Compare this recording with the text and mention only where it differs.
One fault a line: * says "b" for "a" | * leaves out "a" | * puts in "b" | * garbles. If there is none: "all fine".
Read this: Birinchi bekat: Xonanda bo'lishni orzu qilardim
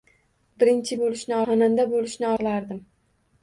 * says "bo'lishni" for "bekat"
* leaves out "orzu"